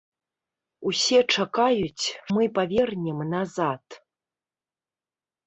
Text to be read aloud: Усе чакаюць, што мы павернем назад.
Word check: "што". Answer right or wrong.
wrong